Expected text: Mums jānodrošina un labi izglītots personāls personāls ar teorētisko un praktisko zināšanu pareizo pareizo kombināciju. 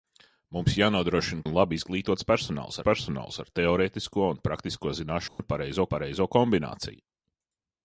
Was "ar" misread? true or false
false